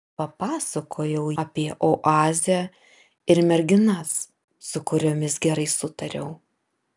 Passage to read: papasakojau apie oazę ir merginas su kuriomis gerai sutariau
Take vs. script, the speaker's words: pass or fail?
pass